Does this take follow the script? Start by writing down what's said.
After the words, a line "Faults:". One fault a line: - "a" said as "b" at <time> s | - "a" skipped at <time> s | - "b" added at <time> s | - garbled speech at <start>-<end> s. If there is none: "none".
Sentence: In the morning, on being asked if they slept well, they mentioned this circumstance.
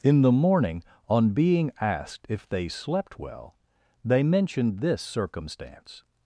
In the morning, on being asked if they slept well, they mentioned this circumstance.
Faults:
none